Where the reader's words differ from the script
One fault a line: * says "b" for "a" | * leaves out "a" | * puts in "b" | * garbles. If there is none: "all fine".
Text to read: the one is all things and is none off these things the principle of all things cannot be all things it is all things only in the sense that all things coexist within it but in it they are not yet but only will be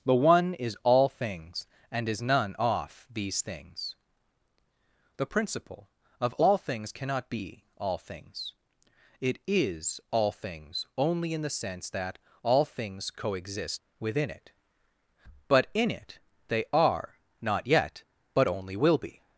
all fine